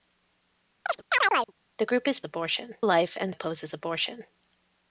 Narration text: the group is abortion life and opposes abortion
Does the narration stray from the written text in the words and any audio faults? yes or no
yes